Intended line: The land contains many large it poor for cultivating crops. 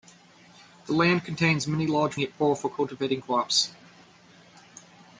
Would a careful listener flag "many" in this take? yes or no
no